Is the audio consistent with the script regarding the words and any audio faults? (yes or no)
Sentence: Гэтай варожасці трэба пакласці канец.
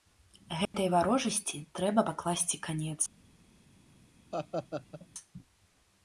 no